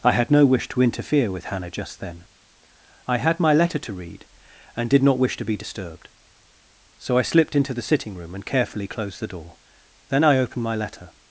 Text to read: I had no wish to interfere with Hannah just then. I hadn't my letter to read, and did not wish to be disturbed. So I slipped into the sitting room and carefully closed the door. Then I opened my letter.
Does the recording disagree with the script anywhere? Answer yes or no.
yes